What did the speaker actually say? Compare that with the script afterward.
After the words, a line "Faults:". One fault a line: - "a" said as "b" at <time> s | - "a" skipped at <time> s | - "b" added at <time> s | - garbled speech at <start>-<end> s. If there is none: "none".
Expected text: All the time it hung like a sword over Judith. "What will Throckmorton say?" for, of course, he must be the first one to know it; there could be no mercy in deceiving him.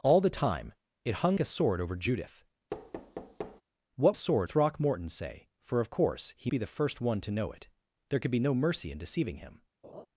All the time it hung a sword over Judith. "What sword Throckmorton say?" for, of course, he be the first one to know it; there could be no mercy in deceiving him.
Faults:
- "like" skipped at 1.4 s
- "will" said as "sword" at 4.1 s
- "must" skipped at 6.5 s